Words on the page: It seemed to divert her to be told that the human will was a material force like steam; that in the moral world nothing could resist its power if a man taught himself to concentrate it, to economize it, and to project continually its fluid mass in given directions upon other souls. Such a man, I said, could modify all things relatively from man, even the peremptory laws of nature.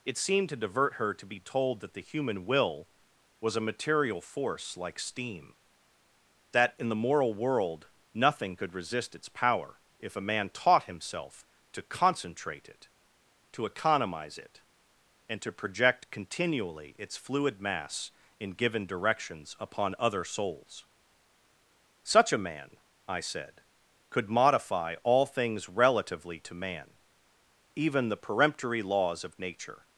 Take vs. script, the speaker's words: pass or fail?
fail